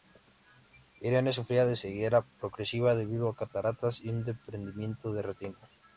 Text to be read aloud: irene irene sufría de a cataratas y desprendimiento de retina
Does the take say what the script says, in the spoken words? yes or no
no